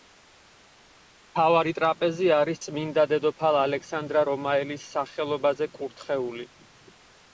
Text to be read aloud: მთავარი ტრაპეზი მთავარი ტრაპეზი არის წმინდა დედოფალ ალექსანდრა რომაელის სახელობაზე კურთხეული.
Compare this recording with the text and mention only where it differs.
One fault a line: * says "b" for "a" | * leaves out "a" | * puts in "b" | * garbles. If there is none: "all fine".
* leaves out "მთავარი ტრაპეზი"